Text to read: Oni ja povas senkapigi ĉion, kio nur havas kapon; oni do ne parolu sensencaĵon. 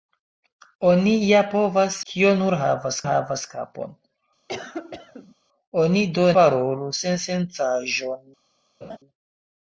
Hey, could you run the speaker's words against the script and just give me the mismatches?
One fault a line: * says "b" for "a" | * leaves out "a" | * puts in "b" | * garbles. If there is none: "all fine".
* leaves out "senkapigi ĉion"
* puts in "havas"
* leaves out "ne"